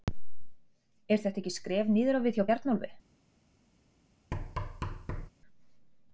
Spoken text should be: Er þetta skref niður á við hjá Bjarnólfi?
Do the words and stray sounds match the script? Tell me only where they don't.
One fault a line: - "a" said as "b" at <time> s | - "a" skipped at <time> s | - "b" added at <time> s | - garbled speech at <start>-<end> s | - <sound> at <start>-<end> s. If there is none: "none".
- "ekki" added at 1.4 s
- thud at 4.3-5.3 s